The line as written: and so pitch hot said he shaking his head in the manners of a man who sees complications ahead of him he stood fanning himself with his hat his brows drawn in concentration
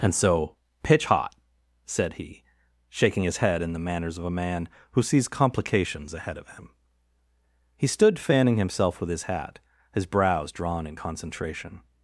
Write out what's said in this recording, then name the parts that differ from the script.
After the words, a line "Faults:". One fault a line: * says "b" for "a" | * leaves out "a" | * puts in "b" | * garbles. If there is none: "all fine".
and so pitch hot said he shaking his head in the manners of a man who sees complications ahead of him he stood fanning himself with his hat his brows drawn in concentration
Faults:
all fine